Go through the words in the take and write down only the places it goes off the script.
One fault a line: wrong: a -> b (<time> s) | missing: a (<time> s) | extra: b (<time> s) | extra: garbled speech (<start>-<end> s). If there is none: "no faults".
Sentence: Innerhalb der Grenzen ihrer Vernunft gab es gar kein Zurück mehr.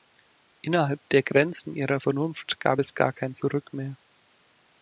no faults